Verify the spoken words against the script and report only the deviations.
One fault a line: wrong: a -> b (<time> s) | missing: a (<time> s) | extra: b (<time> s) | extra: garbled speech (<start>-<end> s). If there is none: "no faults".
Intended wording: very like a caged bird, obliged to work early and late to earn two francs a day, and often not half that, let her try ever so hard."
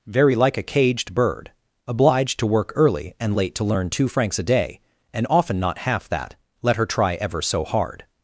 wrong: earn -> learn (3.6 s)